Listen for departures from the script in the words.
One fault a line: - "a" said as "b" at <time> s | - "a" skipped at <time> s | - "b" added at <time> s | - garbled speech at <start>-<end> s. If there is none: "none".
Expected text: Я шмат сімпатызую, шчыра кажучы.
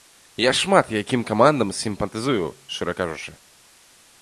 - "якім камандам" added at 1.0 s